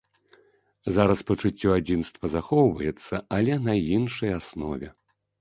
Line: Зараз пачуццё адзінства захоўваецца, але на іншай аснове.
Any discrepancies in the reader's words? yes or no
no